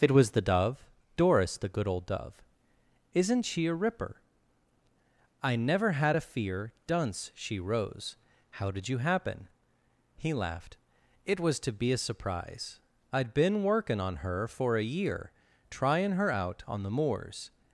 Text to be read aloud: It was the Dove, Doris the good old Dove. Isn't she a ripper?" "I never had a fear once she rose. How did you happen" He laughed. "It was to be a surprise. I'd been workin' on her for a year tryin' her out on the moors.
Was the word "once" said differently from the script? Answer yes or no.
yes